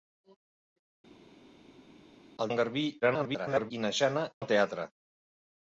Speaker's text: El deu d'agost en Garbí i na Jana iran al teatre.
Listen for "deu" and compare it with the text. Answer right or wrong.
wrong